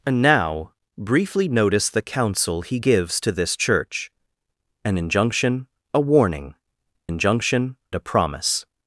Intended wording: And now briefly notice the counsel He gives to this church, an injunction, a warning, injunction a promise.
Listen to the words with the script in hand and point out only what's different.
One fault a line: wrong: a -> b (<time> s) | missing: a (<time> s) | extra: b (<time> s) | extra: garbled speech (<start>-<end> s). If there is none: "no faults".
no faults